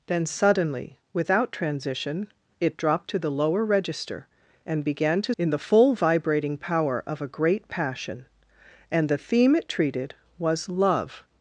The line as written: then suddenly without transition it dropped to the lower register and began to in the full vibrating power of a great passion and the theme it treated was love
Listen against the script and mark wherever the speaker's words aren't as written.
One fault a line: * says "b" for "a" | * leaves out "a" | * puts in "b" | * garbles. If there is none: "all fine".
all fine